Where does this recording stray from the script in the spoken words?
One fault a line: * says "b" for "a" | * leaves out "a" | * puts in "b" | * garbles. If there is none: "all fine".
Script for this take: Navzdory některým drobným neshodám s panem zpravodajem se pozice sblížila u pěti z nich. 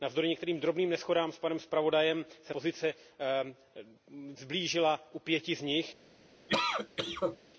all fine